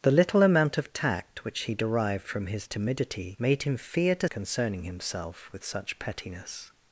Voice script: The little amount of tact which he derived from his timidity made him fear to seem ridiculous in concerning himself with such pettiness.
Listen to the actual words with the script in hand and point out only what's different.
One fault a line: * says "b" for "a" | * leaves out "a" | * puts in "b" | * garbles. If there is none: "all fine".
* leaves out "seem ridiculous in"